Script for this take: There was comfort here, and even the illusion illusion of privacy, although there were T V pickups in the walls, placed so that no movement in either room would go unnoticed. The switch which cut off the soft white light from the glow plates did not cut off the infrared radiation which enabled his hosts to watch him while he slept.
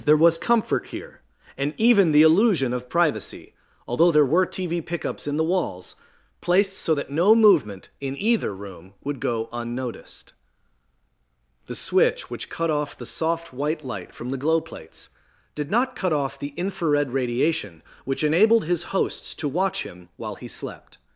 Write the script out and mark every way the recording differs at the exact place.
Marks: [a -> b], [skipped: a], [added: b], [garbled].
There was comfort here, and even the illusion [skipped: illusion] of privacy, although there were T V pickups in the walls, placed so that no movement in either room would go unnoticed. The switch which cut off the soft white light from the glow plates did not cut off the infrared radiation which enabled his hosts to watch him while he slept.